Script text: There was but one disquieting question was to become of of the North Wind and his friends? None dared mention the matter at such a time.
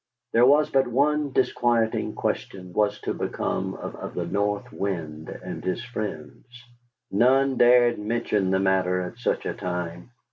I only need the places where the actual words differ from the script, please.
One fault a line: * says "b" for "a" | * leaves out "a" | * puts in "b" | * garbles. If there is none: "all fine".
all fine